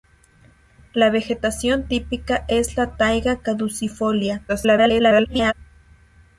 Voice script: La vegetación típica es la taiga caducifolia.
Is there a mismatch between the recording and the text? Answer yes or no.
yes